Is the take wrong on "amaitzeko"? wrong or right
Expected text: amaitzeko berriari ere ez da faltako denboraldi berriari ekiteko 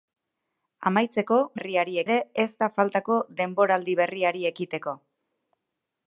right